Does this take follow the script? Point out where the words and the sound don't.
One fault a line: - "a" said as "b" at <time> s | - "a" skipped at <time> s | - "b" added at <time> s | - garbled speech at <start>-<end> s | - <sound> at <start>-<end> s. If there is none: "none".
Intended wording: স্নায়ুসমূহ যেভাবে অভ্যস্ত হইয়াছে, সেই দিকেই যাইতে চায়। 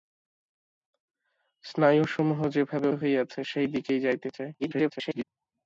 - "অভ্যস্ত" skipped at 2.9 s
- garbled speech at 4.6-5.2 s